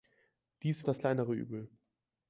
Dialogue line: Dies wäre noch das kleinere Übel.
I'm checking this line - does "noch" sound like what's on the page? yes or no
no